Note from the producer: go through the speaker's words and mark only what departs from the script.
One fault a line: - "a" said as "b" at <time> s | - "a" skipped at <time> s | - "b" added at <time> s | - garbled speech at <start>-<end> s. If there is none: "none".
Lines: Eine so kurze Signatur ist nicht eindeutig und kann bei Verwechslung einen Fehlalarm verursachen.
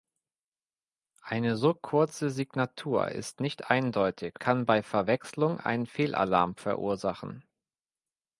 - "und" skipped at 4.4 s